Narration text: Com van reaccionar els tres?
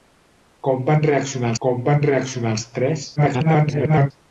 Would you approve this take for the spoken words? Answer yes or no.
no